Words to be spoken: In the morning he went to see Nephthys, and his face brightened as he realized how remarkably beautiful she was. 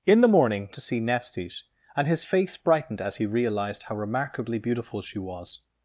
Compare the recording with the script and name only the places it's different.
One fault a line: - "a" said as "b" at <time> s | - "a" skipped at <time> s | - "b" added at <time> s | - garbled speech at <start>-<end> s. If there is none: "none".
- "he went" skipped at 0.7 s